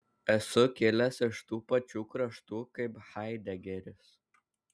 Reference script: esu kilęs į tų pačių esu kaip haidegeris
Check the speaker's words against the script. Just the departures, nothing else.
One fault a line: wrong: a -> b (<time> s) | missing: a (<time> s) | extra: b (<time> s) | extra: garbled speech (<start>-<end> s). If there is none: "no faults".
wrong: į -> iš (1.3 s)
wrong: esu -> kraštų (2.1 s)